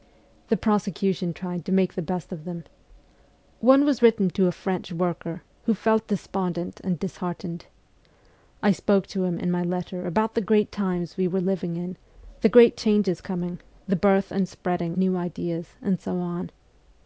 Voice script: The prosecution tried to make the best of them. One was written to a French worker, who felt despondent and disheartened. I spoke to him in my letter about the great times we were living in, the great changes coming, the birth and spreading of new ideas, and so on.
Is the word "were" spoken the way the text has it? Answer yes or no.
yes